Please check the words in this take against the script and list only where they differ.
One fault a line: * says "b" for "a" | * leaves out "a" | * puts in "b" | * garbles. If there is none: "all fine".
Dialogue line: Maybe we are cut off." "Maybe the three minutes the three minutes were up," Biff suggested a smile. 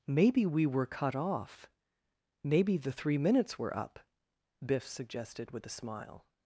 * says "were" for "are"
* leaves out "the three minutes"
* puts in "with"